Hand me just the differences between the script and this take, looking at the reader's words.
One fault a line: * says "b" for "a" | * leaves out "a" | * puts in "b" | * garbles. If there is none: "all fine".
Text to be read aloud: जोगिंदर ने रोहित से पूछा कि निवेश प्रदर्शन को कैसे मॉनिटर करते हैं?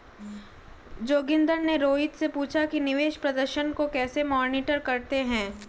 all fine